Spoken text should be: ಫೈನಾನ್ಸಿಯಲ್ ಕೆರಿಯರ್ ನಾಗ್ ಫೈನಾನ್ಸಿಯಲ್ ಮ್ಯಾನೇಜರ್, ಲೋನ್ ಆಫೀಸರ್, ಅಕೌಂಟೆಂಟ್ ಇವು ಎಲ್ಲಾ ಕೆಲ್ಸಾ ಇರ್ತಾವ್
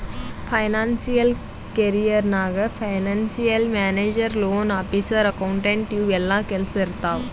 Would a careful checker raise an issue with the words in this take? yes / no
no